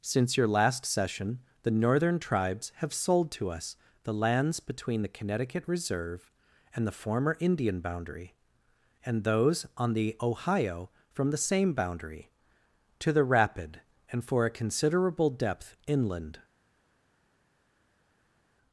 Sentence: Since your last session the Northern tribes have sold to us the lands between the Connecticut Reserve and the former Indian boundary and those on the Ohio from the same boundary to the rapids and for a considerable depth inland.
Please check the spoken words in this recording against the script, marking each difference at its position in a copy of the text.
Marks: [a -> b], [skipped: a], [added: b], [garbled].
Since your last session the Northern tribes have sold to us the lands between the Connecticut Reserve and the former Indian boundary and those on the Ohio from the same boundary to the [rapids -> rapid] and for a considerable depth inland.